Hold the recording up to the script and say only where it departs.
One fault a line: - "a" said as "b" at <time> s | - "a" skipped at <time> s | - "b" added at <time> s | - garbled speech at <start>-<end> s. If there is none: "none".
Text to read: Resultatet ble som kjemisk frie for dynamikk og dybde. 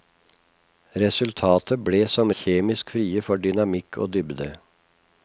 none